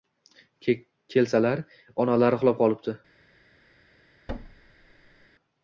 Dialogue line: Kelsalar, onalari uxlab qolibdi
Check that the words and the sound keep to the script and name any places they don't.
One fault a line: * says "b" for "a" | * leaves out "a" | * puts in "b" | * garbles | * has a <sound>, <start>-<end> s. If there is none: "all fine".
* has a thud, 4.3-5.3 s